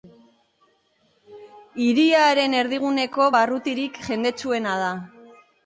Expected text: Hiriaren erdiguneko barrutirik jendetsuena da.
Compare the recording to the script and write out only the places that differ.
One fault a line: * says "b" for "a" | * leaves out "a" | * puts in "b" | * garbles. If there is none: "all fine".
all fine